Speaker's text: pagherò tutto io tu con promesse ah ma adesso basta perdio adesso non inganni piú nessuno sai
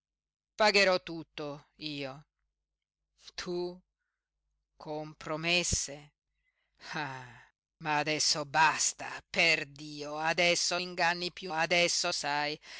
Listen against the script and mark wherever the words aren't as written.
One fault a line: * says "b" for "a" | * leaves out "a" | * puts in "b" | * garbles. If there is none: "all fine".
* leaves out "non"
* says "adesso" for "nessuno"